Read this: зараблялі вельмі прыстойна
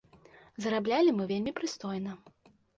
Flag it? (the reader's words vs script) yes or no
yes